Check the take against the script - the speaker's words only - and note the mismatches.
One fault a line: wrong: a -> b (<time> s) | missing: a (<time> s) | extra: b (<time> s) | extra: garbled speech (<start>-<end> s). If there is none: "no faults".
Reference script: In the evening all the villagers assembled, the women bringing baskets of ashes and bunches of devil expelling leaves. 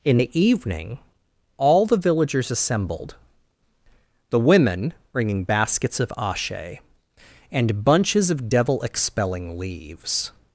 wrong: ashes -> ashe (6.2 s)